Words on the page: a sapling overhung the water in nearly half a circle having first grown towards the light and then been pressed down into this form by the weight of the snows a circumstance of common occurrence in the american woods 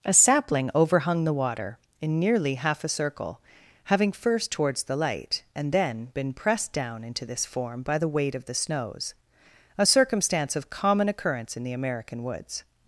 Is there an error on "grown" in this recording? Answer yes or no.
yes